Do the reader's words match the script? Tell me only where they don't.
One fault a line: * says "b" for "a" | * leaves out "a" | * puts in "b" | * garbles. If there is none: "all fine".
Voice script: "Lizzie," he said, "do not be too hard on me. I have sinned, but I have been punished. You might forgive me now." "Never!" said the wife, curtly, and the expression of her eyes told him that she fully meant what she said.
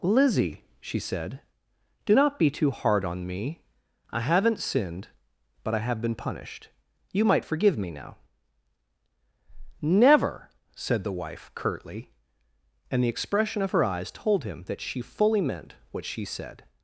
* says "she" for "he"
* says "haven't" for "have"